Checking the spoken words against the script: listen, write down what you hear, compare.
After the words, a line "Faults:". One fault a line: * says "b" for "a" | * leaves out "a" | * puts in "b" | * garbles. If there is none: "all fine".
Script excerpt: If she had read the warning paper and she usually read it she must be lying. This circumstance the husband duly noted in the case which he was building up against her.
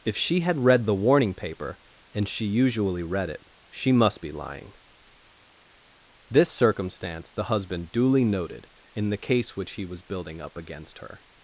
If she had read the warning paper and she usually read it she must be lying. This circumstance the husband duly noted in the case which he was building up against her.
Faults:
all fine